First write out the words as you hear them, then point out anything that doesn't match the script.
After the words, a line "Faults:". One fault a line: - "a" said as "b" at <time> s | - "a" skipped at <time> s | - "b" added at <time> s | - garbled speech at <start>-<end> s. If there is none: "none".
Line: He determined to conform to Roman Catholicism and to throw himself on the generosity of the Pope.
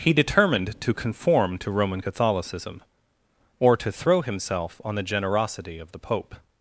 He determined to conform to Roman Catholicism or to throw himself on the generosity of the Pope.
Faults:
- "and" said as "or" at 3.6 s